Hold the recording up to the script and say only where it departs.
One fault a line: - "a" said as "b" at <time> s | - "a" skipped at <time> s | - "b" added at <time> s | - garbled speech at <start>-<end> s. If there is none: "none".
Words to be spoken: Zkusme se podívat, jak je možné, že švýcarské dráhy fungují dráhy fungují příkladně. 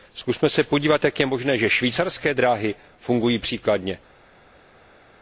- "dráhy fungují" skipped at 3.4 s